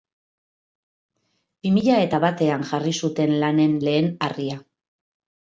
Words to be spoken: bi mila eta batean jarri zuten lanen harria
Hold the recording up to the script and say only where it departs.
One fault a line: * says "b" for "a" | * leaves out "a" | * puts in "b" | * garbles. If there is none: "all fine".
* puts in "lehen"